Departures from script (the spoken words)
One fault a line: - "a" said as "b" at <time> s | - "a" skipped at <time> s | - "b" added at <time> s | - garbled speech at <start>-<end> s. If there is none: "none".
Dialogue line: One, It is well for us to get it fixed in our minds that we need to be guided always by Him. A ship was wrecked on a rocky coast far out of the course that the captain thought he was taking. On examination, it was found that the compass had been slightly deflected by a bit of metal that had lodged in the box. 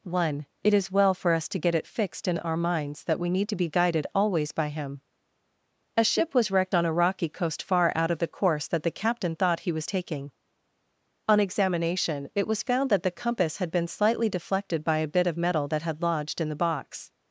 none